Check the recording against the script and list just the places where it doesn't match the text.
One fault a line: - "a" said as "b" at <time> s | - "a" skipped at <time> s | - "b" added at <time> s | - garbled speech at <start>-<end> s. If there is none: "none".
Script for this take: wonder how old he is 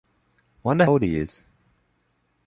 - "how" skipped at 0.9 s